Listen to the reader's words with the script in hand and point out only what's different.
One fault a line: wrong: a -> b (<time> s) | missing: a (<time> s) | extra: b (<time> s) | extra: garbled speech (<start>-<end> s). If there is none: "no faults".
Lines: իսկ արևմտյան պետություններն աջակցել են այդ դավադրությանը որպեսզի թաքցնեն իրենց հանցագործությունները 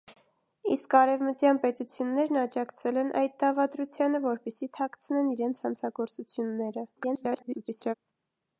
extra: garbled speech (7.0-7.9 s)